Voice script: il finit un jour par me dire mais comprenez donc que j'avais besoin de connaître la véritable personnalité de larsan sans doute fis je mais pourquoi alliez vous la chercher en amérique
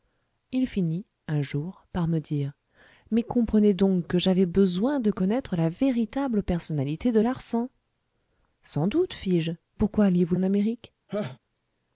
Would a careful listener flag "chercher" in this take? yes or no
yes